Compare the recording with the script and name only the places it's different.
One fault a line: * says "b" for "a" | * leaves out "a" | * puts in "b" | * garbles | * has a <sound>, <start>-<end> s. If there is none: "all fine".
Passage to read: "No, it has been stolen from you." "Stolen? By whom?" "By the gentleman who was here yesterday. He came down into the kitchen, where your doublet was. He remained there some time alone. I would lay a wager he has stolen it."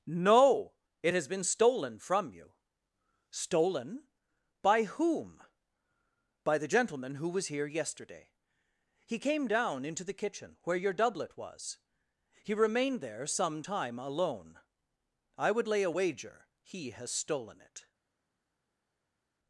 all fine